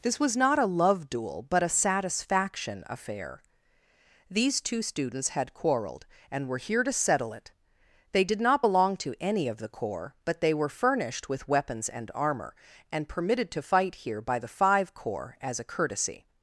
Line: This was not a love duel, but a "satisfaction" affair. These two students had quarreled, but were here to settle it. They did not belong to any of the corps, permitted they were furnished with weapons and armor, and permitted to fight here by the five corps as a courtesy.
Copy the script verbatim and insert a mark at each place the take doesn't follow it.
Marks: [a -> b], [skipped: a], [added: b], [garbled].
This was not a love duel, but a "satisfaction" affair. These two students had quarreled, [but -> and] were here to settle it. They did not belong to any of the corps, [permitted -> but] they were furnished with weapons and armor, and permitted to fight here by the five corps as a courtesy.